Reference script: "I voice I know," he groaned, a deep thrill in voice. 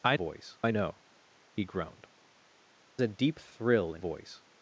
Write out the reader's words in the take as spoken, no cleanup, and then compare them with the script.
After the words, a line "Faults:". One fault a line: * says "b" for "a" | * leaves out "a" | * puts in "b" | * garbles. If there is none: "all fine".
"I voice I know," he groaned, a deep thrill in voice.
Faults:
all fine